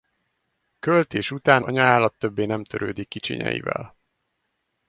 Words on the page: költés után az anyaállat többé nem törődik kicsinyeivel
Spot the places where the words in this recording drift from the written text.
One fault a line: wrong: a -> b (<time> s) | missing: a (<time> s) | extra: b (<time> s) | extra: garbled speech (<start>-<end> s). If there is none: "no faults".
missing: az (1.6 s)